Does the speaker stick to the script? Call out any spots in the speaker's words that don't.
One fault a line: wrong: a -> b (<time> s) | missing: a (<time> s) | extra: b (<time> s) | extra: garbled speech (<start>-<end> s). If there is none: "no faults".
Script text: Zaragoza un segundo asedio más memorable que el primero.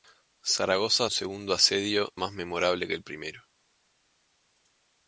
no faults